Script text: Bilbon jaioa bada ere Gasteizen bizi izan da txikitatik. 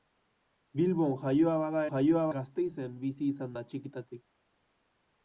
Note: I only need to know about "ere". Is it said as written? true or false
false